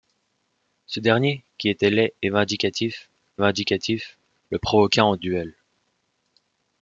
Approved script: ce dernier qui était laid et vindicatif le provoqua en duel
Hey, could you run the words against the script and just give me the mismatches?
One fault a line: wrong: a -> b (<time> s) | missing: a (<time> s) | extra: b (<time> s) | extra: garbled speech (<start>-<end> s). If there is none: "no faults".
extra: vindicatif (3.4 s)